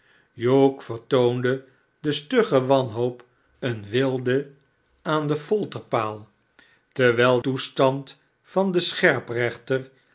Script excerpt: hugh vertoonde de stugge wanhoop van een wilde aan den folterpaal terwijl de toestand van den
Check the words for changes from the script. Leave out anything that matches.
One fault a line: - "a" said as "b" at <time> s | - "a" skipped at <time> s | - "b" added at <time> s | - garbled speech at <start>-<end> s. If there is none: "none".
- "van" skipped at 3.2 s
- "de" skipped at 7.4 s